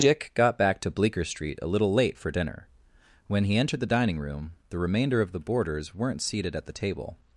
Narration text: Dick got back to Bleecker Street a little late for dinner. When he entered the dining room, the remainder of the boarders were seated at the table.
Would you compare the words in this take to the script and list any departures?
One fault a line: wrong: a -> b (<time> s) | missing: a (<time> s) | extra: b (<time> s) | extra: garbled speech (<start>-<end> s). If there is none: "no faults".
wrong: were -> weren't (5.9 s)